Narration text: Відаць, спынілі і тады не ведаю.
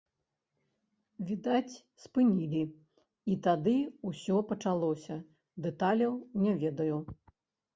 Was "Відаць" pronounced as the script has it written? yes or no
yes